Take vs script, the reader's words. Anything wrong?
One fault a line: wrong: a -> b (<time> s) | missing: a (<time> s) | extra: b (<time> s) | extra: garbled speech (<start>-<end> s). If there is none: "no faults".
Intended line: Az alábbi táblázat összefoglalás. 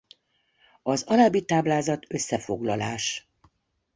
no faults